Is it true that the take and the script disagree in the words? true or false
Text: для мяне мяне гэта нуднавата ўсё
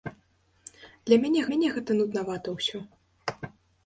false